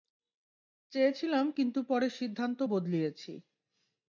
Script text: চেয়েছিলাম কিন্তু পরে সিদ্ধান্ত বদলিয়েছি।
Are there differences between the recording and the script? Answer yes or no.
no